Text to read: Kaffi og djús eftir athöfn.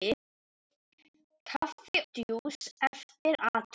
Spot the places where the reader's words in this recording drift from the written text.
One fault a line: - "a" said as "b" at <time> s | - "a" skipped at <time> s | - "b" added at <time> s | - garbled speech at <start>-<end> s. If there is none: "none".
- "og" skipped at 2.0 s